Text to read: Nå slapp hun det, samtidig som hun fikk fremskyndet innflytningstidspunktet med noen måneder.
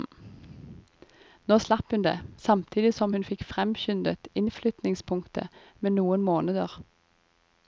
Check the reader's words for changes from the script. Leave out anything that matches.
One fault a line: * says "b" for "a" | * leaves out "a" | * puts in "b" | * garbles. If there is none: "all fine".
all fine